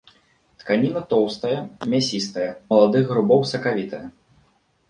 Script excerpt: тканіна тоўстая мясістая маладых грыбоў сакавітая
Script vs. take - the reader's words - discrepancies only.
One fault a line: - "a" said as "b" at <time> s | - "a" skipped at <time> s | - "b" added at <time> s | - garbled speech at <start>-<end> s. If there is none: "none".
none